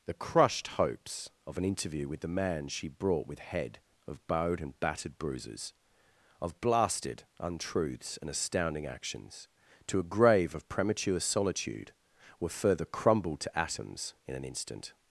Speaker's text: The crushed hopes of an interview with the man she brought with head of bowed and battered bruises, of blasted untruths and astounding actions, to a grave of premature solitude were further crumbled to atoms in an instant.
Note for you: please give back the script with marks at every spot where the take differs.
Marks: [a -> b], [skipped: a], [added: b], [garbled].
The crushed hopes of an interview with the man she brought with head of bowed and battered bruises, of blasted untruths and astounding actions, to a grave of premature solitude were further crumbled to atoms in an instant.